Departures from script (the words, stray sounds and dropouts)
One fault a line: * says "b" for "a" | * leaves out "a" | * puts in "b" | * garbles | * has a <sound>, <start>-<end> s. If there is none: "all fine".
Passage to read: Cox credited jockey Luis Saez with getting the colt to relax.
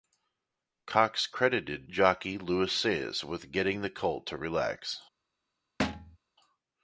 * has a thud, 5.8-6.2 s